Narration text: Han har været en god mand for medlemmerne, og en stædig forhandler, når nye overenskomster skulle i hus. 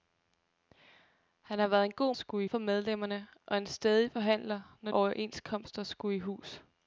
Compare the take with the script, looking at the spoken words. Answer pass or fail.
fail